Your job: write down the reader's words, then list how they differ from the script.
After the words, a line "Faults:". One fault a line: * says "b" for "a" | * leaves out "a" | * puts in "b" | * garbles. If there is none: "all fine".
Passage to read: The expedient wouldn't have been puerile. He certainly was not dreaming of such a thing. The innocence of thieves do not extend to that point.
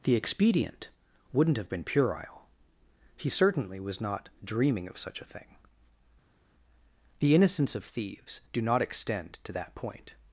The expedient wouldn't have been puerile. He certainly was not dreaming of such a thing. The innocence of thieves do not extend to that point.
Faults:
all fine